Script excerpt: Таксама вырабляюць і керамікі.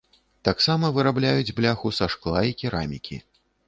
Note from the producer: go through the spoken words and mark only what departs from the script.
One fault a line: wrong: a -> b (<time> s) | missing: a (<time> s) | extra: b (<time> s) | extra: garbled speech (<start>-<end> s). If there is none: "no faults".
extra: бляху са шкла (1.6 s)